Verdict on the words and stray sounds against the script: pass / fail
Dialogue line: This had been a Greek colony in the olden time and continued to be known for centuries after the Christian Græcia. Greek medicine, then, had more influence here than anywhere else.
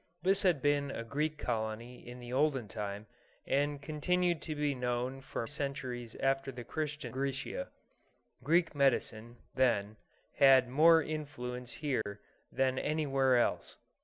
fail